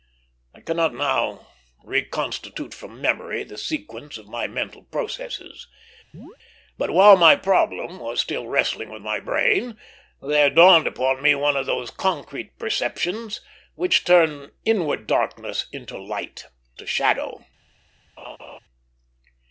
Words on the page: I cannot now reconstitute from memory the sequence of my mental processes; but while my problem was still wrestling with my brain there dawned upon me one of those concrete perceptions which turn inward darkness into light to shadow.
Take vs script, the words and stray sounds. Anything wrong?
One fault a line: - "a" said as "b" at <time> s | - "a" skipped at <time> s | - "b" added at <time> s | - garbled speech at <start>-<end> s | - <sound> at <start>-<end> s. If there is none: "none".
- chirp at 6.1-6.4 s
- laugh at 18.2-18.6 s